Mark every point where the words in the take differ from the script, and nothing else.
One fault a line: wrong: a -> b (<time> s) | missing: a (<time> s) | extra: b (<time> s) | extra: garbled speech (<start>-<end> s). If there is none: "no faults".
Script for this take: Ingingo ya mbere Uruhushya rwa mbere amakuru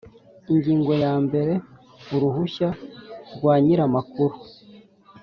wrong: mbere -> nyir (3.6 s)